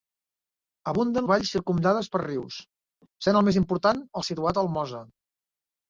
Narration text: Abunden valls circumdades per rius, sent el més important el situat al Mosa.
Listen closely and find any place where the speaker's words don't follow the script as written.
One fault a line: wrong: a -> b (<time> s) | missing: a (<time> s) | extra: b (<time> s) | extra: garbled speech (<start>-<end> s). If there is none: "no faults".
no faults